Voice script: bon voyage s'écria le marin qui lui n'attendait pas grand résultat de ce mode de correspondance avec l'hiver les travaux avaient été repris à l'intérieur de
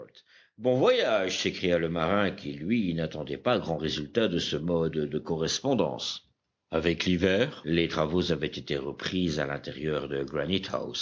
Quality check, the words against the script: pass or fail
pass